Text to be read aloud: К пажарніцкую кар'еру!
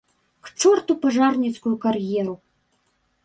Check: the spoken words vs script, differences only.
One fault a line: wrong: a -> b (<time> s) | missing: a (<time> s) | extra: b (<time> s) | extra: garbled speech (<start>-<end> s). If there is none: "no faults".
extra: чорту (0.6 s)